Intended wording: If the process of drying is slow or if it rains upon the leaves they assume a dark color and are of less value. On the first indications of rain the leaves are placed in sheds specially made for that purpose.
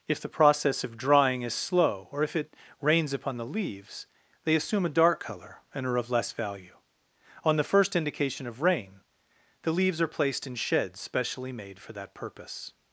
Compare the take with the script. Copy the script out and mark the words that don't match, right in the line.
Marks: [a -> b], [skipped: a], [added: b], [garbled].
If the process of drying is slow or if it rains upon the leaves they assume a dark color and are of less value. On the first [indications -> indication] of rain the leaves are placed in sheds specially made for that purpose.